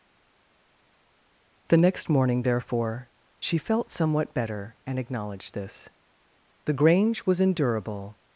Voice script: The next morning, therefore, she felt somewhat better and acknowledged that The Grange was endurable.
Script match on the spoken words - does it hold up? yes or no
no